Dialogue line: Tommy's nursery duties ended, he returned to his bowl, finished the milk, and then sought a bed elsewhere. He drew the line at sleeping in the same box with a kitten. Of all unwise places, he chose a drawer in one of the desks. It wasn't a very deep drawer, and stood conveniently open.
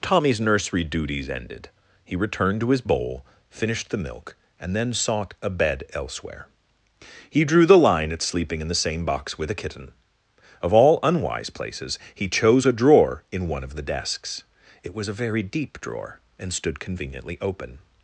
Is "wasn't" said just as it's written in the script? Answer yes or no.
no